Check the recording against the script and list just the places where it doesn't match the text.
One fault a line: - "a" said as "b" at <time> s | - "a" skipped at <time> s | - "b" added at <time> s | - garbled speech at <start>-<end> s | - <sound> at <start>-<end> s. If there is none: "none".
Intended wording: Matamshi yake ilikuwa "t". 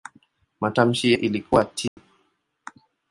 - "yake" skipped at 1.1 s
- dropout at 1.9-2.0 s